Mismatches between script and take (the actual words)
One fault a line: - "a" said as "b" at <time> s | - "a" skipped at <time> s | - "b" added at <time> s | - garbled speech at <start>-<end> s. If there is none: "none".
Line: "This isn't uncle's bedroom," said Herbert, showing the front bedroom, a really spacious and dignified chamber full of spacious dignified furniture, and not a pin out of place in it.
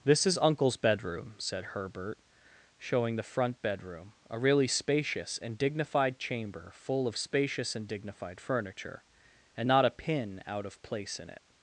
- "isn't" said as "is" at 0.2 s
- "and" added at 7.8 s